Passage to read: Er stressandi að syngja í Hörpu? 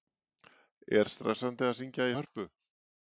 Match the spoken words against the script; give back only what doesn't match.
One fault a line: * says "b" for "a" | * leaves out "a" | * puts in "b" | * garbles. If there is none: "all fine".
all fine